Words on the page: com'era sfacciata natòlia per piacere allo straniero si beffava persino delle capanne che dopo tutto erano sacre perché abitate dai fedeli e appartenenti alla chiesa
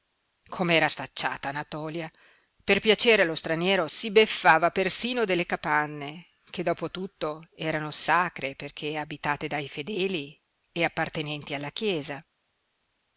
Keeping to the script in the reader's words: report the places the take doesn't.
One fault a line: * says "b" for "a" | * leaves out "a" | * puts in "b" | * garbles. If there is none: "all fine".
all fine